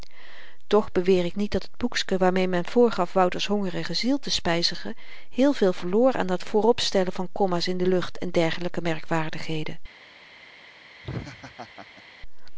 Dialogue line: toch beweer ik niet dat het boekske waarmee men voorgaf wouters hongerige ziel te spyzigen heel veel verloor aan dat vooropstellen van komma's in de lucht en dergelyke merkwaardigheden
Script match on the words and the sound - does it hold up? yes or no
no